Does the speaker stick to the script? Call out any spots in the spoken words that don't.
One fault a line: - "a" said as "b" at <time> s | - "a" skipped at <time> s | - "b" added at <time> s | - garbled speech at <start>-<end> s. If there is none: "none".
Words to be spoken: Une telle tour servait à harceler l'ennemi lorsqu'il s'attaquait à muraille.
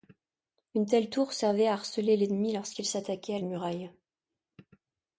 none